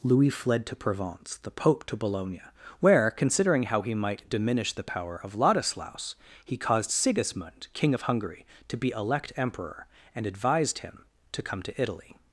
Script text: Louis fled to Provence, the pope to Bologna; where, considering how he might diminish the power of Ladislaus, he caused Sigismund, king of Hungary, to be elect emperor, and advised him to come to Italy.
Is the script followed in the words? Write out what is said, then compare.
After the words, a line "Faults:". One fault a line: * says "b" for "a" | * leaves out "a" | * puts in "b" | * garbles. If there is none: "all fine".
Louis fled to Provence, the pope to Bologna; where, considering how he might diminish the power of Ladislaus, he caused Sigismund, king of Hungary, to be elect emperor, and advised him to come to Italy.
Faults:
all fine